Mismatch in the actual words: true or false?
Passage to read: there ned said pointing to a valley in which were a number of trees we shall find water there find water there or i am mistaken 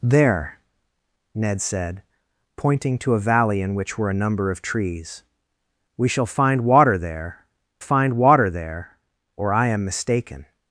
false